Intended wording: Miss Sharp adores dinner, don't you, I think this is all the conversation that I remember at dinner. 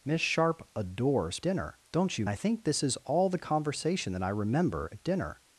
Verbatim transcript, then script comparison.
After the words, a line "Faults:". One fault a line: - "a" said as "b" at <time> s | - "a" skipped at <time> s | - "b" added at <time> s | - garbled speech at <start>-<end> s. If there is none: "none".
Miss Sharp adores dinner, don't you, I think this is all the conversation that I remember at dinner.
Faults:
none